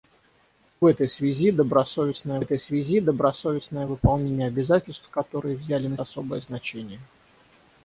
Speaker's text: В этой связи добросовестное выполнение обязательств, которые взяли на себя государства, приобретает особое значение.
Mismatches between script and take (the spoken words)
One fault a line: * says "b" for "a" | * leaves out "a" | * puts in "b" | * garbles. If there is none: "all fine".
* puts in "этой связи добросовестное"
* leaves out "себя государства приобретает"